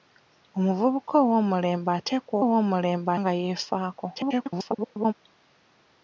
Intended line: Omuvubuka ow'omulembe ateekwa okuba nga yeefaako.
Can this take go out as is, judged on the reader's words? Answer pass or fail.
fail